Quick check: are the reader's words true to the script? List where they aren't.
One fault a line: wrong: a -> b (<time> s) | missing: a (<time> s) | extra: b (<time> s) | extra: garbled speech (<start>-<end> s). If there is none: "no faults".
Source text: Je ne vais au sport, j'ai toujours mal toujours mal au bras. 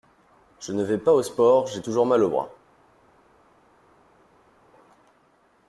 extra: pas (1.0 s)
missing: toujours mal (2.2 s)